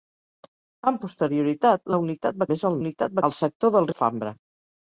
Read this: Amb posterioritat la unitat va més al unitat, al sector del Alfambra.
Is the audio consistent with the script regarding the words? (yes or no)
yes